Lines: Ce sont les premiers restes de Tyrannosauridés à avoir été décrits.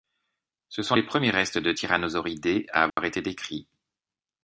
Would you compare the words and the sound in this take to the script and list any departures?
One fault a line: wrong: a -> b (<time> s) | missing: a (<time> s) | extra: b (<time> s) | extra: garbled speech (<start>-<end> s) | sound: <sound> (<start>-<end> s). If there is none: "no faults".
sound: dropout (2.9-3.0 s)